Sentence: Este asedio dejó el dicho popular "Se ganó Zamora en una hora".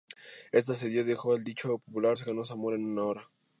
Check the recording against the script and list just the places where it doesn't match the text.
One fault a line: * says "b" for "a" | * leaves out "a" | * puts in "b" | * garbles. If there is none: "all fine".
all fine